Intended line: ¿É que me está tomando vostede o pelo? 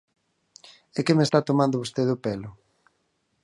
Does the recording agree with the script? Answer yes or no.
yes